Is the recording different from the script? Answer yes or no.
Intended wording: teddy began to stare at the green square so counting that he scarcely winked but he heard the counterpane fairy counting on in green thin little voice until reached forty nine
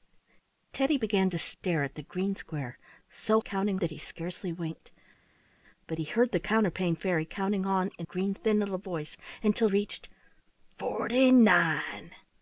no